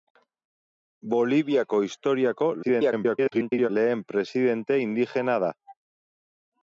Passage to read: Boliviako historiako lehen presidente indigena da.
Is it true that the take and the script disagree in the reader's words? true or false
true